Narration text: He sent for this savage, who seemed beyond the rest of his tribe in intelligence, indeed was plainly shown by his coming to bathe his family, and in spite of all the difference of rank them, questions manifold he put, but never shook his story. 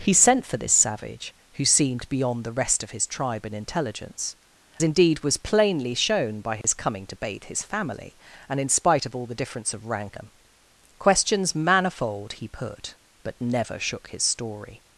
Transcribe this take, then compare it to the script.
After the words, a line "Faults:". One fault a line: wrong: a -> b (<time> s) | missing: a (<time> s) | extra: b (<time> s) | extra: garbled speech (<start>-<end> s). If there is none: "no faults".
He sent for this savage, who seemed beyond the rest of his tribe in intelligence, indeed was plainly shown by his coming to bathe his family, and in spite of all the difference of rank them, questions manifold he put, but never shook his story.
Faults:
no faults